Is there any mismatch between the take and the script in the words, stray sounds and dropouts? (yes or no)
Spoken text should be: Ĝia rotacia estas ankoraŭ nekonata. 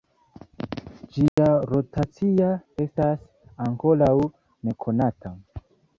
yes